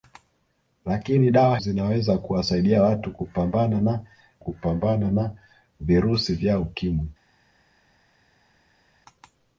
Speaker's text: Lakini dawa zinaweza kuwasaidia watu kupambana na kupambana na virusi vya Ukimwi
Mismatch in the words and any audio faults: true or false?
false